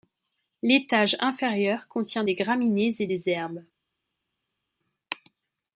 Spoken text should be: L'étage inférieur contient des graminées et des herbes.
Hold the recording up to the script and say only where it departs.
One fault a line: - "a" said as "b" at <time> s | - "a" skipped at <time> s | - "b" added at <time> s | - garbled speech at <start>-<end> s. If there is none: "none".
none